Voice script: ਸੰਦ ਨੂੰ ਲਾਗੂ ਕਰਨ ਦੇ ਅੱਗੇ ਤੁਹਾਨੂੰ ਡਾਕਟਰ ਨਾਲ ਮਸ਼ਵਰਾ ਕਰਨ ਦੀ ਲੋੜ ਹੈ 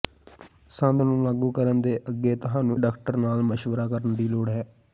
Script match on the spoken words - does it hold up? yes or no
yes